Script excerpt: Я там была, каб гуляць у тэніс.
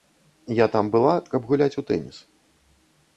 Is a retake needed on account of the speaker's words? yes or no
no